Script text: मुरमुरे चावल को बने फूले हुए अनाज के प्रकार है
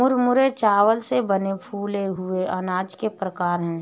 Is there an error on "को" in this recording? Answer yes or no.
yes